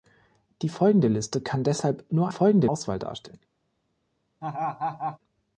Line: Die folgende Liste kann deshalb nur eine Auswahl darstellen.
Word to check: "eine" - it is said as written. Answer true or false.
false